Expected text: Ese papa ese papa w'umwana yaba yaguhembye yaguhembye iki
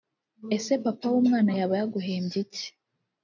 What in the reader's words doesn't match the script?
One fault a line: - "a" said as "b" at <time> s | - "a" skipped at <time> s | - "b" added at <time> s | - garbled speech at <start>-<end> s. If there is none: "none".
- "ese papa" skipped at 1.1 s
- "yaguhembye" skipped at 2.4 s